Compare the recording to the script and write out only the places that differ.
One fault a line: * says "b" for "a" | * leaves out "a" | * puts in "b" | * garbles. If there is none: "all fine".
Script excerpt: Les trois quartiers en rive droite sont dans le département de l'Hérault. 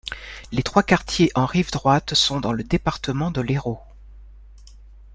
all fine